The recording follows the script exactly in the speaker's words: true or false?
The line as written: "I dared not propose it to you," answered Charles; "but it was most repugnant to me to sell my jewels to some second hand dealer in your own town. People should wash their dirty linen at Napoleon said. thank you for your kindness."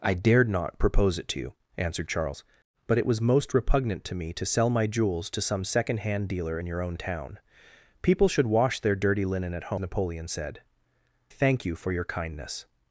true